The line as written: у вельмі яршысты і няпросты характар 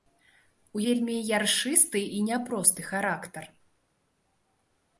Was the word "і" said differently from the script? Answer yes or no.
no